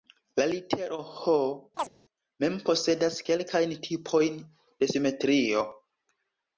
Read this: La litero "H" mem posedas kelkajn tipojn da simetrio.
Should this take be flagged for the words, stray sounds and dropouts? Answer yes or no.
yes